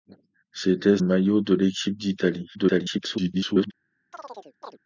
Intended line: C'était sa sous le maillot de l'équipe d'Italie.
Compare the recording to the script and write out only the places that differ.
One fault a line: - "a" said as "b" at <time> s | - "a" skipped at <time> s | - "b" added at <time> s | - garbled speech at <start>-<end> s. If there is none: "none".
- "sa sous le" skipped at 1.0 s
- garbled speech at 2.5-3.7 s